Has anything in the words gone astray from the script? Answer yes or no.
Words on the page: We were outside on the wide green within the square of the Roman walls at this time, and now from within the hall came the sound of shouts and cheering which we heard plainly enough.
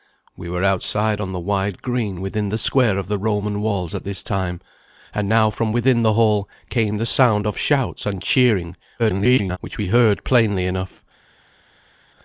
yes